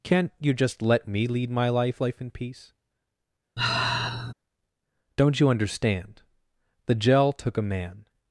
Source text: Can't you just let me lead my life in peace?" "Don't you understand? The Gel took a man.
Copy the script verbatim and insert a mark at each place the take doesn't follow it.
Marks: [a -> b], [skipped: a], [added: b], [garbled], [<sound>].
Can't you just let me lead my life [added: life] in peace?" [sigh] "Don't you understand? The Gel took a man.